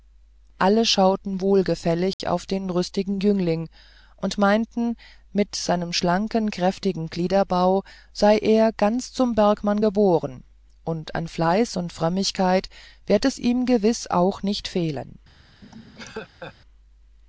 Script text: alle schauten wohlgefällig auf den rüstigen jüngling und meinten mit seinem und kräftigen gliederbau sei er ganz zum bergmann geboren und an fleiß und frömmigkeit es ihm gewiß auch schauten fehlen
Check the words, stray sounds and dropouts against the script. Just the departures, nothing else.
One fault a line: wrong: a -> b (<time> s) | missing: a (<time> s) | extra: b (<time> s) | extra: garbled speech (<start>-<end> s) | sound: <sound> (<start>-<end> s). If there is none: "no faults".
sound: dropout (2.1-2.2 s)
wrong: und -> schlanken (5.9 s)
extra: werd (13.1 s)
wrong: schauten -> nicht (14.4 s)
sound: laugh (15.6-16.5 s)